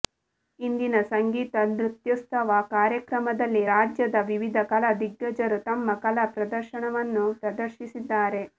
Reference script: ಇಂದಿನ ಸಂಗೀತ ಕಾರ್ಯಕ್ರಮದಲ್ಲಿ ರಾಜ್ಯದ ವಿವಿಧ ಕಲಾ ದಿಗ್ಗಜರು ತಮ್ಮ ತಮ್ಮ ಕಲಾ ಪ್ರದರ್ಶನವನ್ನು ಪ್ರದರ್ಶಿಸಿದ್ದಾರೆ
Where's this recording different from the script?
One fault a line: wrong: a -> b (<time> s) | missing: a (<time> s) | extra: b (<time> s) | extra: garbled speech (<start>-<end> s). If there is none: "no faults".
extra: ನೃತ್ಯೋತ್ಸವ (1.7 s)
missing: ತಮ್ಮ (5.9 s)